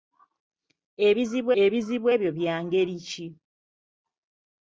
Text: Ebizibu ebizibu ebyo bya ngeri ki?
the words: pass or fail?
pass